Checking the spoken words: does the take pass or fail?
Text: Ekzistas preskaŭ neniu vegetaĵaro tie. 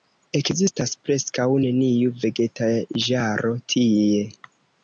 pass